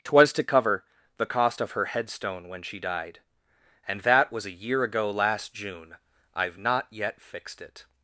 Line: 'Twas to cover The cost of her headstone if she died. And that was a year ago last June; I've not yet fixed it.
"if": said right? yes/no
no